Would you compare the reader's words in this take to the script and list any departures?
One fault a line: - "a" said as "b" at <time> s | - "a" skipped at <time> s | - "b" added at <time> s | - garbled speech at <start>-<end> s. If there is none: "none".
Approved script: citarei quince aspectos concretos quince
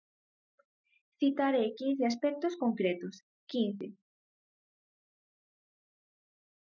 none